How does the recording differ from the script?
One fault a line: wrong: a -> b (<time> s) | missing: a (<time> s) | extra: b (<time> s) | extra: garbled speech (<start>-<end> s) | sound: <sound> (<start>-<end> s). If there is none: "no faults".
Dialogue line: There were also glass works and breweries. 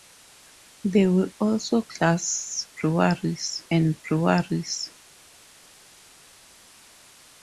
wrong: works -> breweries (2.7 s)